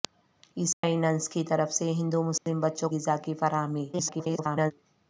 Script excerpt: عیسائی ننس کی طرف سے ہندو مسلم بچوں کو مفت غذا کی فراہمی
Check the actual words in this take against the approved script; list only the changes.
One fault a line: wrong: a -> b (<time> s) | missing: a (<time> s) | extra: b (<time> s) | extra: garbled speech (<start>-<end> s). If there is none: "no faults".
missing: کو مفت (2.9 s)
extra: garbled speech (3.9-4.7 s)